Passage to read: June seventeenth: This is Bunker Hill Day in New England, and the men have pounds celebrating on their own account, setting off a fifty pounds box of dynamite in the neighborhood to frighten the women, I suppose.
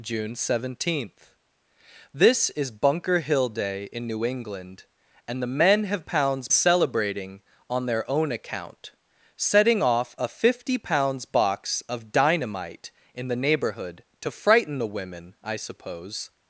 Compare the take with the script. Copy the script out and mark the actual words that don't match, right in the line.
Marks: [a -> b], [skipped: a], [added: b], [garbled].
June seventeenth: This is Bunker Hill Day in New England, and the men have pounds celebrating on their own account, setting off a fifty pounds box of dynamite in the neighborhood to frighten the women, I suppose.